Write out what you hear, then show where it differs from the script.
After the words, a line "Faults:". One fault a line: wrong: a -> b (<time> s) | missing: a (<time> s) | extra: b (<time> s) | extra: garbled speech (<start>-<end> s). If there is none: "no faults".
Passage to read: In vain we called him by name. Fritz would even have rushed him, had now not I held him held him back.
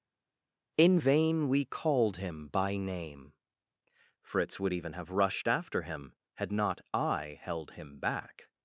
In vain we called him by name. Fritz would even have rushed after him, had not I held him back.
Faults:
extra: after (5.5 s)
missing: now (6.5 s)
missing: held him (8.0 s)